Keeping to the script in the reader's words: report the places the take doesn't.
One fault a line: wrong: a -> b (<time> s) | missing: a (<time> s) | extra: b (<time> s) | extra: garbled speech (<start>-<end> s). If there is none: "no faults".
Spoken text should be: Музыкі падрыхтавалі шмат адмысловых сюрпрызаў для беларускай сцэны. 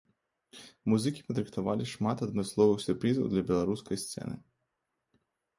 no faults